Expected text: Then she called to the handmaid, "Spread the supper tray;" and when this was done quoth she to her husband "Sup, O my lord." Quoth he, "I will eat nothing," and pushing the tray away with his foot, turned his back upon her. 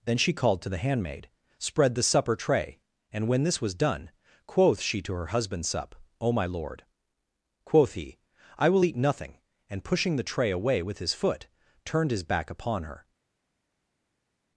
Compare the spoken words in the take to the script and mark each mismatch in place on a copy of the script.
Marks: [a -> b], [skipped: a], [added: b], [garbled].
Then she called to the handmaid, "Spread the supper tray;" and when this was done quoth she to her husband "Sup, O my lord." Quoth he, "I will eat nothing," and pushing the tray away with his foot, turned his back upon her.